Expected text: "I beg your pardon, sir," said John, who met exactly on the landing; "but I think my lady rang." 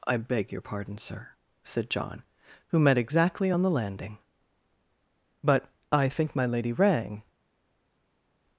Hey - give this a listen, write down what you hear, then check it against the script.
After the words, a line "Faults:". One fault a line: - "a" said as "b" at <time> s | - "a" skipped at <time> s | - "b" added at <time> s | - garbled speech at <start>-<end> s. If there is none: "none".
"I beg your pardon, sir," said John, who met exactly on the landing; "but I think my lady rang."
Faults:
none